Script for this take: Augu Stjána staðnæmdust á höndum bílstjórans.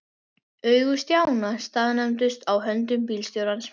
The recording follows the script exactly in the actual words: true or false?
true